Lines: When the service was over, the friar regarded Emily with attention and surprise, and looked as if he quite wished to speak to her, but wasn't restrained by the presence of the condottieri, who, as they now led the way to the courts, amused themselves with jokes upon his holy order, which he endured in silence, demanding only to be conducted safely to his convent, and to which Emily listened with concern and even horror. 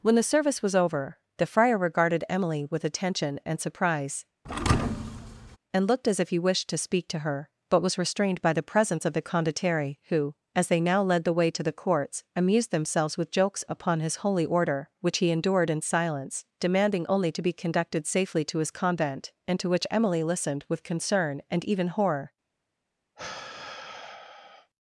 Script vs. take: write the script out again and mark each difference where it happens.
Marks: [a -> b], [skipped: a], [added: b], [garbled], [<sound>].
When the service was over, the friar regarded Emily with attention and surprise, [thud] and looked as if he [skipped: quite] wished to speak to her, but [wasn't -> was] restrained by the presence of the condottieri, who, as they now led the way to the courts, amused themselves with jokes upon his holy order, which he endured in silence, demanding only to be conducted safely to his convent, and to which Emily listened with concern and even horror. [sigh]